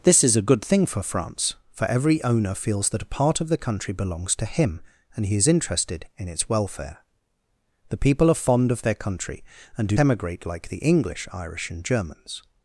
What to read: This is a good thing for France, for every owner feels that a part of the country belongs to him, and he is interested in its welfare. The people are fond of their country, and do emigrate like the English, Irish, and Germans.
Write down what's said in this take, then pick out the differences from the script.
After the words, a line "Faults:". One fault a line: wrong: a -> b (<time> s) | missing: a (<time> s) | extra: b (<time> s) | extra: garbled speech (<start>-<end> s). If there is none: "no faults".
This is a good thing for France, for every owner feels that a part of the country belongs to him, and he is interested in its welfare. The people are fond of their country, and do emigrate like the English, Irish, and Germans.
Faults:
no faults